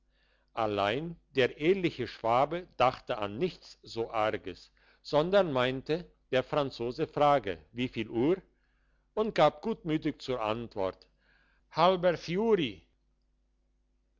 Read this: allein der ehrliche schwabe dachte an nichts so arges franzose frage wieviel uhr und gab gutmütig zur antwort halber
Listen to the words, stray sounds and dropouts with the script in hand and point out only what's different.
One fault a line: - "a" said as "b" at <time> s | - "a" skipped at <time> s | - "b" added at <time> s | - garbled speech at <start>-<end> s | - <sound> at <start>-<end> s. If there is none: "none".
- "sondern meinte der" added at 5.0 s